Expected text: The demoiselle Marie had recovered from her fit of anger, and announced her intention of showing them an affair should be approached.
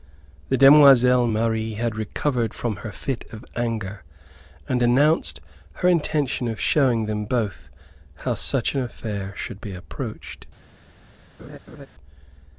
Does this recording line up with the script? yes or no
no